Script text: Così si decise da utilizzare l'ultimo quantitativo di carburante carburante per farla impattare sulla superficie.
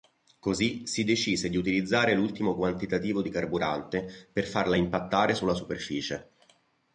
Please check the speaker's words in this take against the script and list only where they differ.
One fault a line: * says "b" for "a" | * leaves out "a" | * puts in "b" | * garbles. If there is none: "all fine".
* says "di" for "da"
* leaves out "carburante"